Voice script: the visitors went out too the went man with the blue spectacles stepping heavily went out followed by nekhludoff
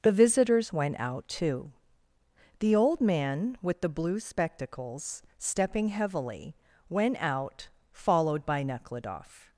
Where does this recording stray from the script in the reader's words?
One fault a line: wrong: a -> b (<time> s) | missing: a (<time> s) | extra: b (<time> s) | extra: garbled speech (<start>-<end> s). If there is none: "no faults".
wrong: went -> old (2.8 s)